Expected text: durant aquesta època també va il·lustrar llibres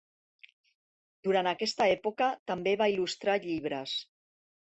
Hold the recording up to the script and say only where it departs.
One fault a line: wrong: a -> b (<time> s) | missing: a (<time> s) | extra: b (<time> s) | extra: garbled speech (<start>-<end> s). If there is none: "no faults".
no faults